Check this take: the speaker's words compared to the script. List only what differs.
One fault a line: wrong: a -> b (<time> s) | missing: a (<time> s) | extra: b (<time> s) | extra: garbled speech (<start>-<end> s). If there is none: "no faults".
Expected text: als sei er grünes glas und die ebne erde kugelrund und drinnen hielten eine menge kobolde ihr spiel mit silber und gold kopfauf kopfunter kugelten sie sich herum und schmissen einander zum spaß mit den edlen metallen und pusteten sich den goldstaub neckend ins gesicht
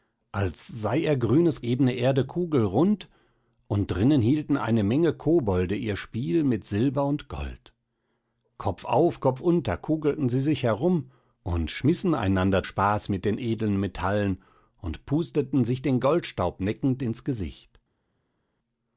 missing: glas und die (1.6 s)
missing: zum (12.7 s)